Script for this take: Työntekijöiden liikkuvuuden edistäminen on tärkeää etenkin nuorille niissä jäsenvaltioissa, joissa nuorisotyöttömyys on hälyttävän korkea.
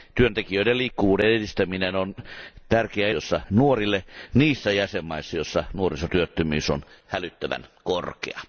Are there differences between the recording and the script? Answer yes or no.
yes